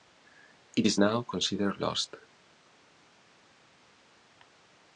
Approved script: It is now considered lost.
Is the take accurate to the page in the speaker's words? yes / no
yes